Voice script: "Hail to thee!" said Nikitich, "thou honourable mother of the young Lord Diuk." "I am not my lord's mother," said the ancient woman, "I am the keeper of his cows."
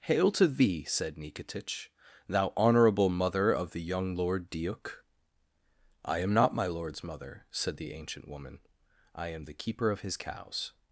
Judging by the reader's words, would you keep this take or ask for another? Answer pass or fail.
pass